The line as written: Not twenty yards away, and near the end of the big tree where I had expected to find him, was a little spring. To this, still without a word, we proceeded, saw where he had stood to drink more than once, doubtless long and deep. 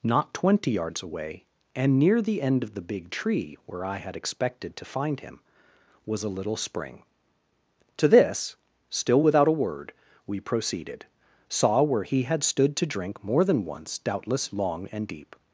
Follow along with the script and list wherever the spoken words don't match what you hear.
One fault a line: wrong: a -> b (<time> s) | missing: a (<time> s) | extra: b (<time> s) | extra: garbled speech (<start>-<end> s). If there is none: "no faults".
no faults